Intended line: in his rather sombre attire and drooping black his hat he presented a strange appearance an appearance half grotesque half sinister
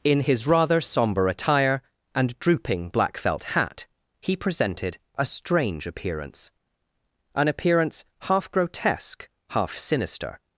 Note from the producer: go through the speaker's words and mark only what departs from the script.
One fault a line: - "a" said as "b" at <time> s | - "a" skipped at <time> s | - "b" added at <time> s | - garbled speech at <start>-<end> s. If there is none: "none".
- "his" said as "felt" at 3.2 s